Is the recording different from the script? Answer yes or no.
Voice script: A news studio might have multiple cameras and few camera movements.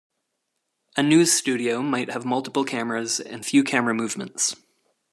no